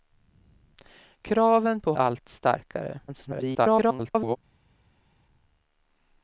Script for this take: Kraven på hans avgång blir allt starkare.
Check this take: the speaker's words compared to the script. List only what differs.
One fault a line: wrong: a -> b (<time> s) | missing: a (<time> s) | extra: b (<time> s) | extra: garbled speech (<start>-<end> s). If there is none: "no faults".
missing: hans avgång blir (1.9 s)
extra: garbled speech (3.1-4.4 s)